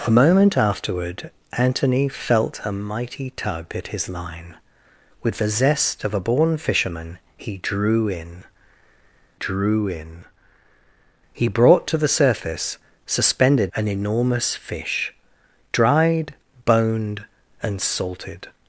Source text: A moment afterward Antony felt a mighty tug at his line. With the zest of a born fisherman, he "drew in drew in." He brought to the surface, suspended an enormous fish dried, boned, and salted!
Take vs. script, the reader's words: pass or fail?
pass